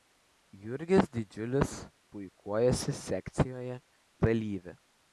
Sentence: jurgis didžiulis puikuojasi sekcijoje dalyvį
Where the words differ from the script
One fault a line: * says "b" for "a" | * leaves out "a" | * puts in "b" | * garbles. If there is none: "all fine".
all fine